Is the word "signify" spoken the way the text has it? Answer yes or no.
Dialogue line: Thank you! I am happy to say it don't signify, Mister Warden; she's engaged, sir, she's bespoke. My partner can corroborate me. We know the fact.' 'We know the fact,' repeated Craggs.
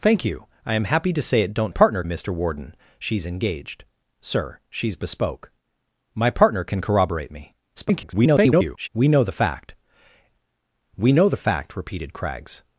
no